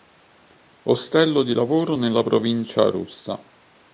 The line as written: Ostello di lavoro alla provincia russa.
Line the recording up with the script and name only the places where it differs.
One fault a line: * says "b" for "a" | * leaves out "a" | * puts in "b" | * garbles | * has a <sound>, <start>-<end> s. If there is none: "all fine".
* says "nella" for "alla"